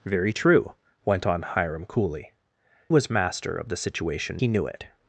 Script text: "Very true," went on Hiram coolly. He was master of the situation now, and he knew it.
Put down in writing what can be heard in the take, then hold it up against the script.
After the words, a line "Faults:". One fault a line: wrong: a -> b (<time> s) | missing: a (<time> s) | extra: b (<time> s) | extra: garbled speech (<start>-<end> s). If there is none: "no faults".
"Very true," went on Hiram coolly. Was master of the situation he knew it.
Faults:
missing: He (2.3 s)
missing: now and (4.4 s)